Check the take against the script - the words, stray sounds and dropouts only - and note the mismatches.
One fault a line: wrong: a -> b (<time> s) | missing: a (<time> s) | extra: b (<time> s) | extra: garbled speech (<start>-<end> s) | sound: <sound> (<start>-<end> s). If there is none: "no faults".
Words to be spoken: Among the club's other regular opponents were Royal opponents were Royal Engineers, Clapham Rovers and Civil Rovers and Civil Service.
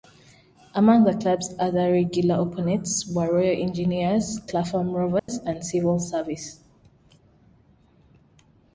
missing: opponents were Royal (3.6 s)
sound: dropout (5.2-5.3 s)
missing: Rovers and Civil (6.0 s)